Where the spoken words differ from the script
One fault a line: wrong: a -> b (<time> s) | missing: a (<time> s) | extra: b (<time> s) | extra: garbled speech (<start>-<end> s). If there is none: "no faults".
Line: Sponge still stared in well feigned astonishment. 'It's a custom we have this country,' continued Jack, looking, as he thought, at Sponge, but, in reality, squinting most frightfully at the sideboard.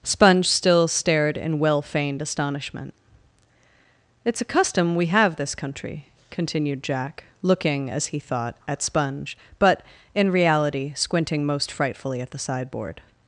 no faults